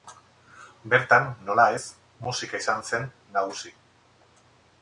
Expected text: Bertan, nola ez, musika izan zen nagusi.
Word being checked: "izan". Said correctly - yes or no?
yes